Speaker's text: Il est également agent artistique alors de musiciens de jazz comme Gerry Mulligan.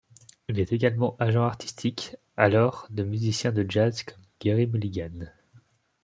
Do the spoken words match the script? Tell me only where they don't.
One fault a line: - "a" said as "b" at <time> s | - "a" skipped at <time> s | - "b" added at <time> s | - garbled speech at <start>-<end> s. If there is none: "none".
none